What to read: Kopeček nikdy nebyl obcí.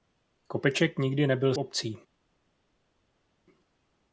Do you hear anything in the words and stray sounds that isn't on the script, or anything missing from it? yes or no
no